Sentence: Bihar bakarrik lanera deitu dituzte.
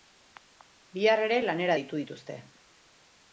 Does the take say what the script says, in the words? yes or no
no